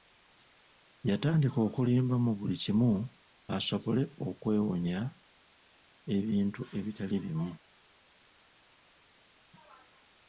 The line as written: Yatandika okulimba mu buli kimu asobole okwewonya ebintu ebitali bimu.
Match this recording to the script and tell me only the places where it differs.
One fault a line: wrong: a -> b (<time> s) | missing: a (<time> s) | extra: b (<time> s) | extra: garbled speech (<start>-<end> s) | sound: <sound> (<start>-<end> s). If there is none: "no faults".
no faults